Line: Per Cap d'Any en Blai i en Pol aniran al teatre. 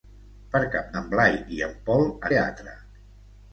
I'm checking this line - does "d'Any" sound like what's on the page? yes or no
no